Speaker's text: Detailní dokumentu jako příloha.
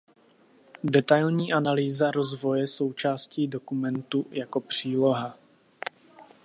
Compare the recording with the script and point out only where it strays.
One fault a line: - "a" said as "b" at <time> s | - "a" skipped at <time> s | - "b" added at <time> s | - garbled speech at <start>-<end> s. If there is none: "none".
- "analýza rozvoje součástí" added at 1.5 s